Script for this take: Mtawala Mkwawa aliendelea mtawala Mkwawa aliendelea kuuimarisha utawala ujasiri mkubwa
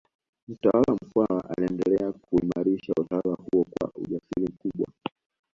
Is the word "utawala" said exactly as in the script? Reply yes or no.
no